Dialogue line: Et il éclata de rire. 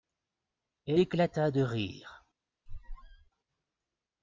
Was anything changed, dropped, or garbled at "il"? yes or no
yes